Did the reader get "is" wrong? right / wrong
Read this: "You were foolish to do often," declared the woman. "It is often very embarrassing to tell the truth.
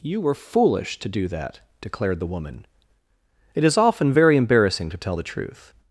right